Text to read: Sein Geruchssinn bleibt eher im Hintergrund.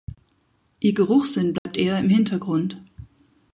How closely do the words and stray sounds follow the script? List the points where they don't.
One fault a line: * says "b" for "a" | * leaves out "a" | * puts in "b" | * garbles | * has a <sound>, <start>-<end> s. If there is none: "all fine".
* says "Ihr" for "Sein"
* has a dropout, 1.6-1.7 s